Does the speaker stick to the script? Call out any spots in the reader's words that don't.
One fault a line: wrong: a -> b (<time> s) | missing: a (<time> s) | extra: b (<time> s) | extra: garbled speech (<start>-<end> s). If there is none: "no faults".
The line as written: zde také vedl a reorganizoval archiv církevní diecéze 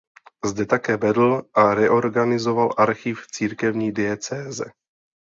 no faults